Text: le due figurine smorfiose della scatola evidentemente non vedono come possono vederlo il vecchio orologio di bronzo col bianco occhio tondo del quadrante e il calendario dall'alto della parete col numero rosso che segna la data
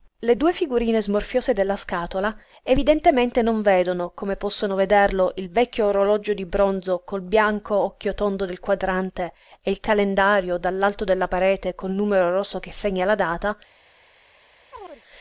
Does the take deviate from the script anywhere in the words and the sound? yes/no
yes